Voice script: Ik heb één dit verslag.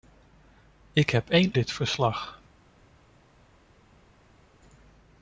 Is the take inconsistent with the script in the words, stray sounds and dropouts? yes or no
no